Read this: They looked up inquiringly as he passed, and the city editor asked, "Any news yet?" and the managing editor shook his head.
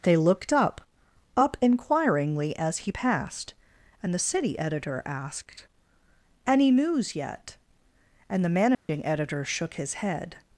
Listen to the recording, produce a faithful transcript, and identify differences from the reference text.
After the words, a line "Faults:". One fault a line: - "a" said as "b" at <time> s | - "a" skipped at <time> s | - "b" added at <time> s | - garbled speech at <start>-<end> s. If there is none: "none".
They looked up up inquiringly as he passed, and the city editor asked, "Any news yet?" and the managing editor shook his head.
Faults:
- "up" added at 1.4 s